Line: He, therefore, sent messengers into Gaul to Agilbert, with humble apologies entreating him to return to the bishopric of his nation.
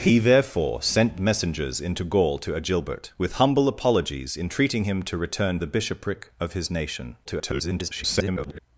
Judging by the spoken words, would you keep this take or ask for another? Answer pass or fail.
fail